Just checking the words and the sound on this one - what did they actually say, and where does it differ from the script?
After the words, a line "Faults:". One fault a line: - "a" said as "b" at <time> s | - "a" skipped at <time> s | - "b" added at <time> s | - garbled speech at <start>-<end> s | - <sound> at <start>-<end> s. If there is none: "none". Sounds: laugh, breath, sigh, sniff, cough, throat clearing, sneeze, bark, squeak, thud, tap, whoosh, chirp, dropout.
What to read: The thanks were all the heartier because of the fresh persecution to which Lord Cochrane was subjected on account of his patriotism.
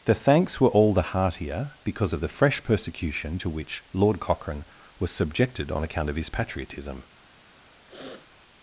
The thanks were all the heartier because of the fresh persecution to which Lord Cochrane was subjected on account of his patriotism.
Faults:
- sniff at 7.9-8.3 s